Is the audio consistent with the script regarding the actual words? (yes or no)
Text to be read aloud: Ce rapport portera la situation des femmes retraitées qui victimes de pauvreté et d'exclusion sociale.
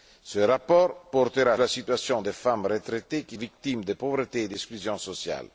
yes